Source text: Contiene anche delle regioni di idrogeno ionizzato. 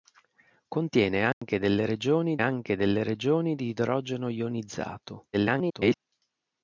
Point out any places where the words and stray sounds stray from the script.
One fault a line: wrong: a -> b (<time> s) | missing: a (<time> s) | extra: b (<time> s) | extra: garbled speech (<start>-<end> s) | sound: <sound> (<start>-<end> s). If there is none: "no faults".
sound: dropout (1.3-1.4 s)
extra: anche delle regioni (2.4 s)
extra: garbled speech (5.3-6.0 s)